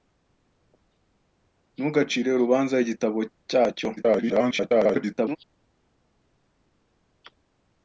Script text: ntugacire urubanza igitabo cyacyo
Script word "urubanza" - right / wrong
right